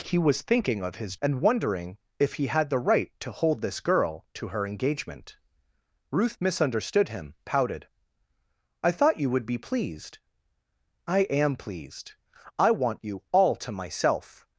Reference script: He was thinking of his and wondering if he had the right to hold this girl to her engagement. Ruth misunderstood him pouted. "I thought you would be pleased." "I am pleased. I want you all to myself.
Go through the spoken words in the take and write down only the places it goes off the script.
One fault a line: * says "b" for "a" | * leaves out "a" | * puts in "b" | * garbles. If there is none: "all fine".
all fine